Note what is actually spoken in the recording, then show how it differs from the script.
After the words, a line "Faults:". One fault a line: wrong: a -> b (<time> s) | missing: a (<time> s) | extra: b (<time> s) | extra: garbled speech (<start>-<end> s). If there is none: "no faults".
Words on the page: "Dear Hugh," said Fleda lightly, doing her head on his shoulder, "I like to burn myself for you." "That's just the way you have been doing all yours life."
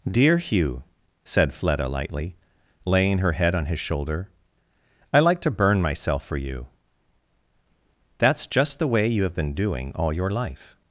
"Dear Hugh," said Fleda lightly, laying her head on his shoulder, "I like to burn myself for you." "That's just the way you have been doing all your life."
Faults:
wrong: doing -> laying (2.9 s)
wrong: yours -> your (10.1 s)